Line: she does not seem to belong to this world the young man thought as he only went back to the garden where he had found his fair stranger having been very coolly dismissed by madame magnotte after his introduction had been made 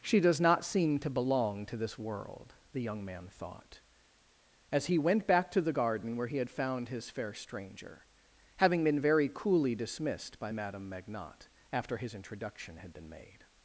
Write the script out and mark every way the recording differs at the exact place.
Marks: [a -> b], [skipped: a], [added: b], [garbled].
she does not seem to belong to this world the young man thought as he [skipped: only] went back to the garden where he had found his fair stranger having been very coolly dismissed by madame magnotte after his introduction had been made